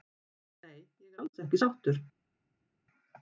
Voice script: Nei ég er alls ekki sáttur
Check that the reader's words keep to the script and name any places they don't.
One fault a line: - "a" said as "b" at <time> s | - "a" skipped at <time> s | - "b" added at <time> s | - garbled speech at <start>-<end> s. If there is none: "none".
none